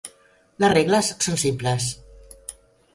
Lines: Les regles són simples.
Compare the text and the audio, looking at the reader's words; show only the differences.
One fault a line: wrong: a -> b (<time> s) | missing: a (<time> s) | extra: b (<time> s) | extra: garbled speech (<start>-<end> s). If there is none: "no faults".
no faults